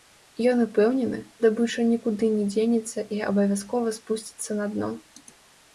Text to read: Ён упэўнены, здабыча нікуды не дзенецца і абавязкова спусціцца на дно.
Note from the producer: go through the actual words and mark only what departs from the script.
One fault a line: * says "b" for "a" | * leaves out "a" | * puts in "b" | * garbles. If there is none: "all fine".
all fine